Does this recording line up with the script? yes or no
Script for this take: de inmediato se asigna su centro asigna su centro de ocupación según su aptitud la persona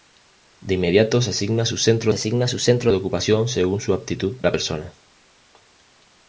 yes